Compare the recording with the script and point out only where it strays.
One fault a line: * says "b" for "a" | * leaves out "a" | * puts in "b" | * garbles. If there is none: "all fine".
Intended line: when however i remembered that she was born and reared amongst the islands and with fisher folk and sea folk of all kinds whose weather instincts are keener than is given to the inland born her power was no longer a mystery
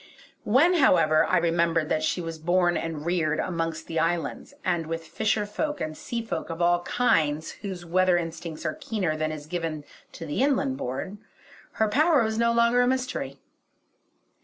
all fine